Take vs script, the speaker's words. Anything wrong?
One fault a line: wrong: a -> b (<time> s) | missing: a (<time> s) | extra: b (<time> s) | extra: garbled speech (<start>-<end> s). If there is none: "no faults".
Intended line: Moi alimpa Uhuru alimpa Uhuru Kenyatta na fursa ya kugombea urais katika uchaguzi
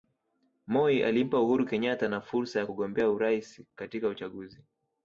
missing: alimpa Uhuru (1.6 s)